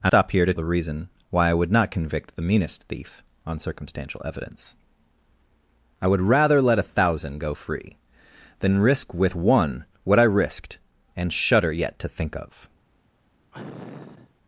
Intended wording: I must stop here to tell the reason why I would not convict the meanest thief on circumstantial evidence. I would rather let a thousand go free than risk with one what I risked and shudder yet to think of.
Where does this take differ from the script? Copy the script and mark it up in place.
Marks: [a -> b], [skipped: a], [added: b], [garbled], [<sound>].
I [skipped: must] stop here to [skipped: tell] the reason why I would not convict the meanest thief on circumstantial evidence. I would rather let a thousand go free than risk with one what I risked and shudder yet to think of. [sniff]